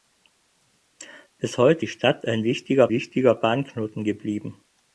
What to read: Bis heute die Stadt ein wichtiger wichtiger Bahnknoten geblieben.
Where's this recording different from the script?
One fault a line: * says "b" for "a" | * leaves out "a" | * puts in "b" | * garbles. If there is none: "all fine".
all fine